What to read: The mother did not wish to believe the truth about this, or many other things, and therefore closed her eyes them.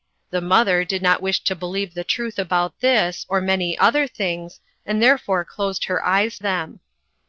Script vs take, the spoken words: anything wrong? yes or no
no